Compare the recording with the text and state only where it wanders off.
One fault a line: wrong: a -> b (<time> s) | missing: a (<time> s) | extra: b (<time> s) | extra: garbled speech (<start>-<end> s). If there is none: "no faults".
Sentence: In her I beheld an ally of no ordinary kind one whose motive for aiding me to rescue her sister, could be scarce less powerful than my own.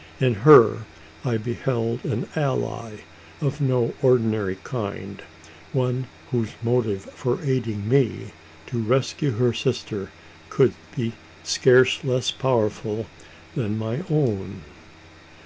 no faults